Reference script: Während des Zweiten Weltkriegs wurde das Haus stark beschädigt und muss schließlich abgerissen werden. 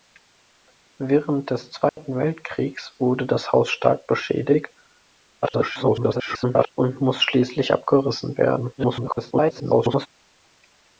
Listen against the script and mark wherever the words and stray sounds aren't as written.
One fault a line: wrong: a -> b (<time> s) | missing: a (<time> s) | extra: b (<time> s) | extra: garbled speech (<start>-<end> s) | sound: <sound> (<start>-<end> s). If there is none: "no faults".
sound: dropout (1.9-2.0 s)
extra: garbled speech (5.4-6.7 s)
extra: garbled speech (8.8-10.1 s)